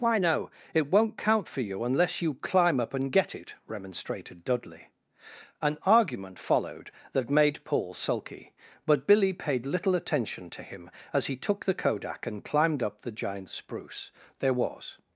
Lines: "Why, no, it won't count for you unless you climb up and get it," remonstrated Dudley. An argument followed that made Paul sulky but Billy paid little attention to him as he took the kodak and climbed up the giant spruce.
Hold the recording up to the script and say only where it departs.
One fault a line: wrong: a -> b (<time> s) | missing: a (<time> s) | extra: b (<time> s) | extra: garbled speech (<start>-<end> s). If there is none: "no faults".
extra: There was (14.4 s)